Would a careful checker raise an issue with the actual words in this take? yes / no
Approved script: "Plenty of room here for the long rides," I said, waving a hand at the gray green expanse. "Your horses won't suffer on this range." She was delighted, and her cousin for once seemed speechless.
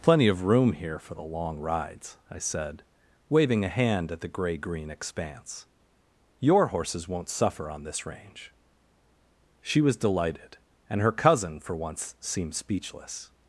no